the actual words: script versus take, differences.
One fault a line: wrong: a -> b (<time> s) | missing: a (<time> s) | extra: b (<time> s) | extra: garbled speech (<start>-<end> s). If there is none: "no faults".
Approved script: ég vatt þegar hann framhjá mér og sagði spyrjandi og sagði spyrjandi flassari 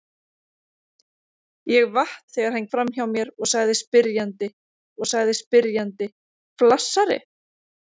no faults